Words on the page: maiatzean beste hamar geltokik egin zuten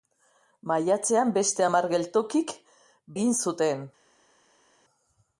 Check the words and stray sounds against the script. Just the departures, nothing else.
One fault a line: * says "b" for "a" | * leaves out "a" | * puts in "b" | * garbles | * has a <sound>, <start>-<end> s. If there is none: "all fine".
all fine